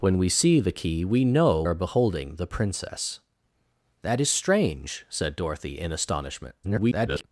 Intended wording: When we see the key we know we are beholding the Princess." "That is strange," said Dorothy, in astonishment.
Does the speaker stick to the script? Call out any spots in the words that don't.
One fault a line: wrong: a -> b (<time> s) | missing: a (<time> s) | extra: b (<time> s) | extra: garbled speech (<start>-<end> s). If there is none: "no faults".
missing: we (1.6 s)
extra: garbled speech (6.6-7.2 s)